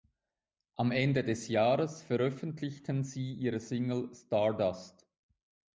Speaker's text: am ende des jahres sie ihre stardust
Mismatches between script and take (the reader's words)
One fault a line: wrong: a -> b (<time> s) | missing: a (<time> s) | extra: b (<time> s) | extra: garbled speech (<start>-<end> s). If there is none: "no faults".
extra: veröffentlichten (2.0 s)
extra: single (3.6 s)